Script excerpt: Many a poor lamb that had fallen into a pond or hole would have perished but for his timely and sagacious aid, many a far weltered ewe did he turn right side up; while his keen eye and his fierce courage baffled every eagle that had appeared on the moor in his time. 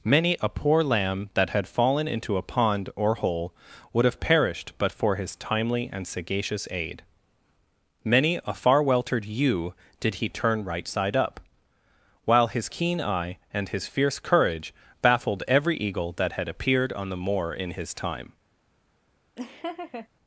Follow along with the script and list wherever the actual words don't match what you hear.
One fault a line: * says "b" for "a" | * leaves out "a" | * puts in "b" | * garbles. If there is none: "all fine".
all fine